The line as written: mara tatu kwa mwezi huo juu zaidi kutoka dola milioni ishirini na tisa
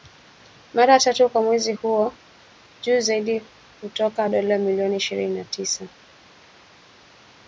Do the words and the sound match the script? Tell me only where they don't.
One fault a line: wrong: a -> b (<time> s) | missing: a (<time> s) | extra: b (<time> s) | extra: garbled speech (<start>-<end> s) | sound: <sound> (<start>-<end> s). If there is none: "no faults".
no faults